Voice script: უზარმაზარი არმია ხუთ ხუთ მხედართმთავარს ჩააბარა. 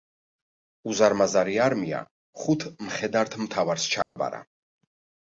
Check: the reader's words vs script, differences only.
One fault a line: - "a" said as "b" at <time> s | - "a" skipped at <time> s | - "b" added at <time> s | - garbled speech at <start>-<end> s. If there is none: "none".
- "ხუთ" skipped at 2.6 s